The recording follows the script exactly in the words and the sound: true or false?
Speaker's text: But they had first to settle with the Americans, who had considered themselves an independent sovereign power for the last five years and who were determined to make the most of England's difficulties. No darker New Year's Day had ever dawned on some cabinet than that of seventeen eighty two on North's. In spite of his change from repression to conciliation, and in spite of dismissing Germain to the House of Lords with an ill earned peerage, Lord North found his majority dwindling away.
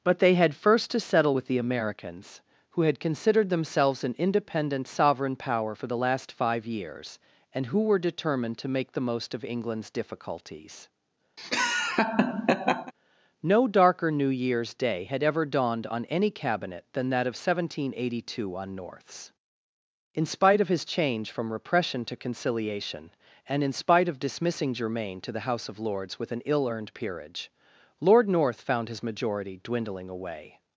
false